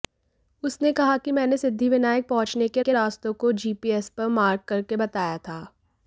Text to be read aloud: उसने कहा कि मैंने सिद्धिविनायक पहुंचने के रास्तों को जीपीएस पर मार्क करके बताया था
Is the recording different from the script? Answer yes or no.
yes